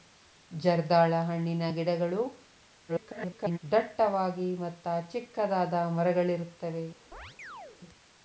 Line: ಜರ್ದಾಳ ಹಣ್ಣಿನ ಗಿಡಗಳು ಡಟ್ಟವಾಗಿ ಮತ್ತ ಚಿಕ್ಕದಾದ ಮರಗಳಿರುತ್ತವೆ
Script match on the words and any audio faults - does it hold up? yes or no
no